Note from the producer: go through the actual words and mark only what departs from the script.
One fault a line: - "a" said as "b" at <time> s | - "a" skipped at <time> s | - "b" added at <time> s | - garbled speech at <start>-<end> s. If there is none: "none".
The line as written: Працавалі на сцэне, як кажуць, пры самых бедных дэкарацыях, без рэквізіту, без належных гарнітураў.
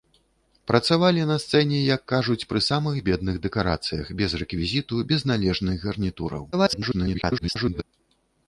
- garbled speech at 6.5-7.8 s